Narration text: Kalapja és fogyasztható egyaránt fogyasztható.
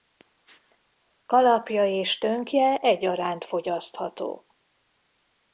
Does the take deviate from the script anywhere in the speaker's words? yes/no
yes